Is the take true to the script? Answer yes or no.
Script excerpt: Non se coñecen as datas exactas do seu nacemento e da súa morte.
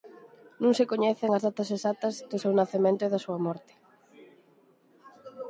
yes